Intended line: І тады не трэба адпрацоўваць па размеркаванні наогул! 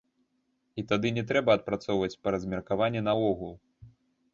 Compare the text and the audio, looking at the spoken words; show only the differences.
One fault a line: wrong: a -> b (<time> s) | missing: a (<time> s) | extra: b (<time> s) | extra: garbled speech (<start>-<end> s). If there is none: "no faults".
no faults